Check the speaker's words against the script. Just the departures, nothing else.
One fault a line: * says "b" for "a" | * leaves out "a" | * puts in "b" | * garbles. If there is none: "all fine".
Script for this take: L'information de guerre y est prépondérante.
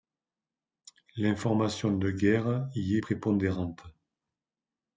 all fine